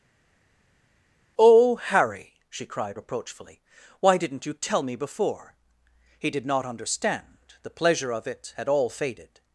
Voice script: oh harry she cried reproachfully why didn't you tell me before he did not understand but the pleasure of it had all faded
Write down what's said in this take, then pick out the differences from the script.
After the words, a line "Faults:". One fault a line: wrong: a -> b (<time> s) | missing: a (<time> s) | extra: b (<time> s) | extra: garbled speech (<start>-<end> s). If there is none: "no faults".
oh harry she cried reproachfully why didn't you tell me before he did not understand the pleasure of it had all faded
Faults:
missing: but (7.4 s)